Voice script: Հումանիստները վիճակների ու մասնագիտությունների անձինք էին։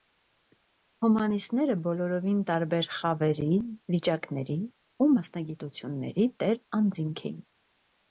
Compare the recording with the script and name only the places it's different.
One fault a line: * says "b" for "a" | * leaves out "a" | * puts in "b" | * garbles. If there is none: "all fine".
* puts in "բոլորովին տարբեր խավերի"
* puts in "տեր"